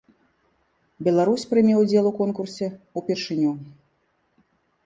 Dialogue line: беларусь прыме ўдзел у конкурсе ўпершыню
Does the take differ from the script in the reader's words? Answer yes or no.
no